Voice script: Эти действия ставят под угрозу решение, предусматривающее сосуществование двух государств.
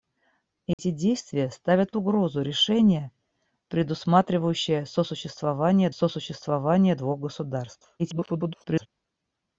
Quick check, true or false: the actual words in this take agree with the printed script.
false